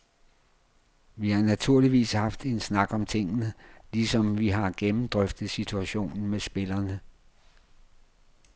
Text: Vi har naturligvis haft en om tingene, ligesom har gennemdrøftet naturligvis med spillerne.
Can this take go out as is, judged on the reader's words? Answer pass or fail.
fail